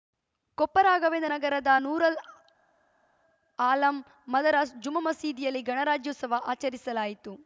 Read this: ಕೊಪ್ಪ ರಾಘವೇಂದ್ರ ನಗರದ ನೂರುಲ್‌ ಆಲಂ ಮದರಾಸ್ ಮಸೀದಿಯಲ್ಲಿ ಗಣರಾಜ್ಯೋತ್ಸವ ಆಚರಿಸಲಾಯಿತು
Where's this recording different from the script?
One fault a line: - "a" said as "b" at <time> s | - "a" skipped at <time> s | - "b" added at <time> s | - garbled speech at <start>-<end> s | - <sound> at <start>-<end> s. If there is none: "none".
- "ಜುಮ್ಮಾ" added at 4.8 s